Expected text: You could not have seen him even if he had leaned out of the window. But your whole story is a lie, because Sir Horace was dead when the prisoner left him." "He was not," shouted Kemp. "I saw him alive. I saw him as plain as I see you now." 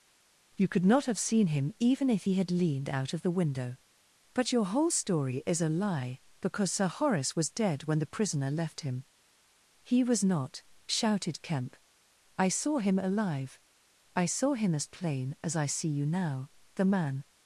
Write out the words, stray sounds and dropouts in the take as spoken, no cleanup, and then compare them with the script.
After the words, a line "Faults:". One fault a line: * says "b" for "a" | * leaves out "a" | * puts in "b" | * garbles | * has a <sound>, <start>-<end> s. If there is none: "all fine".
You could not have seen him even if he had leaned out of the window. But your whole story is a lie, because Sir Horace was dead when the prisoner left him." "He was not," shouted Kemp. "I saw him alive. I saw him as plain as I see you now." The man
Faults:
* puts in "The man"